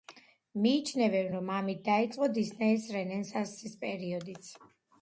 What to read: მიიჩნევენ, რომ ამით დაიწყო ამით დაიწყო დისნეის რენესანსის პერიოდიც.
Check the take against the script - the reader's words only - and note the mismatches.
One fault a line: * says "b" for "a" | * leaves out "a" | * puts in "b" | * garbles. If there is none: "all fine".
* leaves out "ამით დაიწყო"